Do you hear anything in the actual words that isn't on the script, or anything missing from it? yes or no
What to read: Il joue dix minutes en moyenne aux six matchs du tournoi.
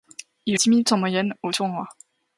yes